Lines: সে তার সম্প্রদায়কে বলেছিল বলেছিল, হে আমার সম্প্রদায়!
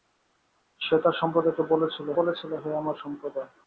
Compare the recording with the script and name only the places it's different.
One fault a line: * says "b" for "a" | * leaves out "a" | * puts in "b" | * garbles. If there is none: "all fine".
all fine